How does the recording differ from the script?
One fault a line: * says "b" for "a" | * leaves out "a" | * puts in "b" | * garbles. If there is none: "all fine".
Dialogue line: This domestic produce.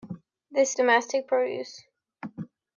all fine